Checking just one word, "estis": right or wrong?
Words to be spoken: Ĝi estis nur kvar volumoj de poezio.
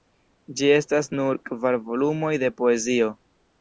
wrong